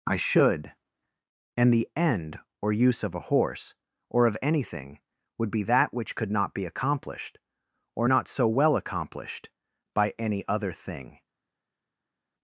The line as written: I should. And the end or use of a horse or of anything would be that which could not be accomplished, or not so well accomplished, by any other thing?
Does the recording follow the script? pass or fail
pass